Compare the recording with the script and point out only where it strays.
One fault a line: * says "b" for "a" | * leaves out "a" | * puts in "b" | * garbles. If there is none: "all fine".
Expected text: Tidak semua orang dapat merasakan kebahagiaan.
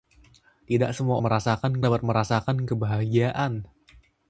* says "merasakan" for "orang"